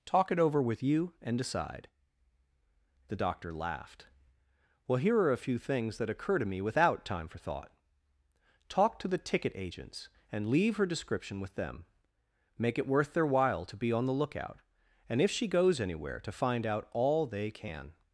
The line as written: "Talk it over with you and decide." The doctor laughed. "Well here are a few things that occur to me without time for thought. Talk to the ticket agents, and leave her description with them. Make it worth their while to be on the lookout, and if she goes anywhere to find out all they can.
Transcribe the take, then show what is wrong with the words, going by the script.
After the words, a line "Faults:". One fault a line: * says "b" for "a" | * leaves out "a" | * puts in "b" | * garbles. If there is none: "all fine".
"Talk it over with you and decide." The doctor laughed. "Well here are a few things that occur to me without time for thought. Talk to the ticket agents, and leave her description with them. Make it worth their while to be on the lookout, and if she goes anywhere to find out all they can.
Faults:
all fine